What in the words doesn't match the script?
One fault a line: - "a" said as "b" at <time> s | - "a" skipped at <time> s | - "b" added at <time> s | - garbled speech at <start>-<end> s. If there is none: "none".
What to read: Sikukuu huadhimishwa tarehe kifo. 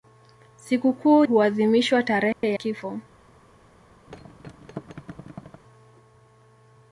none